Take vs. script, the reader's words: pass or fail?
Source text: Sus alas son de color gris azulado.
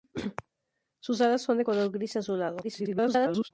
fail